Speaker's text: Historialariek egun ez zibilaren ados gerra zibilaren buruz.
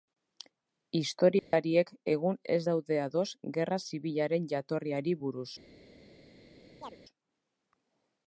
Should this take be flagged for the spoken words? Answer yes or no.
yes